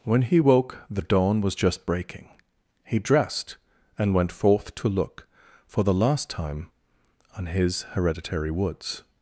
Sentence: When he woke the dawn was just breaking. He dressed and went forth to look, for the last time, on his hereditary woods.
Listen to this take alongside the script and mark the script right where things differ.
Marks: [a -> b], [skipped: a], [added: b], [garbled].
When he woke the dawn was just breaking. He dressed and went forth to look, for the last time, on his hereditary woods.